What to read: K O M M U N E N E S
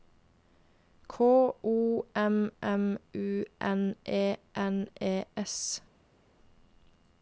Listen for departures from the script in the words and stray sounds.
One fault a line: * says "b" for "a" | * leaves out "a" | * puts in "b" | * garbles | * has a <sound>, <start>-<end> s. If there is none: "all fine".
all fine